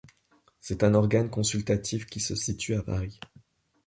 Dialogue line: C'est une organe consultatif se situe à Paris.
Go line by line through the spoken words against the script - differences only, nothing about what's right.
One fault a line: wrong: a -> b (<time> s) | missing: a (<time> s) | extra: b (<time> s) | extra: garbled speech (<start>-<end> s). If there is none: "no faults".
wrong: une -> un (0.8 s)
extra: qui (2.1 s)